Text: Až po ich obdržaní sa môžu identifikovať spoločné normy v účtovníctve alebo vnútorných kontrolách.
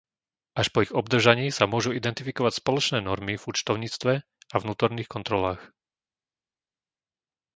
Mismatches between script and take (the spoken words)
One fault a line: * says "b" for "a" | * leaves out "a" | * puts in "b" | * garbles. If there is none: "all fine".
* says "a" for "alebo"